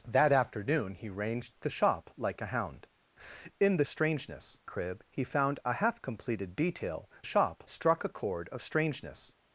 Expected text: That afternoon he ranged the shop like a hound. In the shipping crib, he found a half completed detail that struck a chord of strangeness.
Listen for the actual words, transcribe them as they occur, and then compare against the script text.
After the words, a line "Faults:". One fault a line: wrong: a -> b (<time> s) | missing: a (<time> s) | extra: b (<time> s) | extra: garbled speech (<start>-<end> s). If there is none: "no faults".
That afternoon he ranged the shop like a hound. In the strangeness crib, he found a half completed detail shop struck a chord of strangeness.
Faults:
wrong: shipping -> strangeness (3.9 s)
wrong: that -> shop (7.2 s)